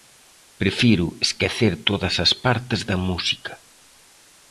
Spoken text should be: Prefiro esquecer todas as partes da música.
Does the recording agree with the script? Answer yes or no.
yes